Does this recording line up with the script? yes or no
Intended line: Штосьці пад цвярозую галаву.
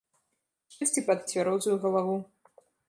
yes